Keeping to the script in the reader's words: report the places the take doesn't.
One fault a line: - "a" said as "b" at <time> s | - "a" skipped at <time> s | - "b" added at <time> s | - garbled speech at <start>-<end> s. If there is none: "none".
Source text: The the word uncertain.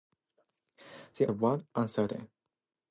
none